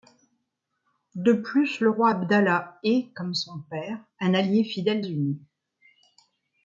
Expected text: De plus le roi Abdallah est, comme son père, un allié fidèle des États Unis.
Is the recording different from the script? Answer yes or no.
yes